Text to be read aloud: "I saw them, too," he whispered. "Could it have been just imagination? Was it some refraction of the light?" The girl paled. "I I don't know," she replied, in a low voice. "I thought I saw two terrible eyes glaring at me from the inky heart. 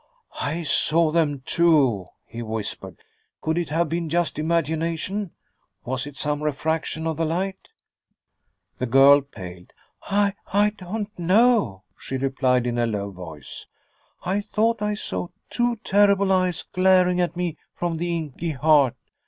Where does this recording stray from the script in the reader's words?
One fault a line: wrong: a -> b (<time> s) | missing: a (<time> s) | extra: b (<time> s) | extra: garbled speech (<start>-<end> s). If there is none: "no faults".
no faults